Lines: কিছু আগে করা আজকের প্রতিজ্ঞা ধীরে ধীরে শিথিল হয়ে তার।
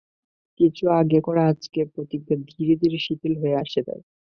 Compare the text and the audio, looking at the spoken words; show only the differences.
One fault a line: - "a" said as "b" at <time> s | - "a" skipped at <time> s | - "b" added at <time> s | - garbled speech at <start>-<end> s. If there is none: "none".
- "আসে" added at 3.6 s